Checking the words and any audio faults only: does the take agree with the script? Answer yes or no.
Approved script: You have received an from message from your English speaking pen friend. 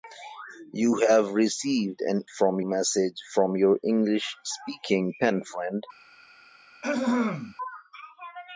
no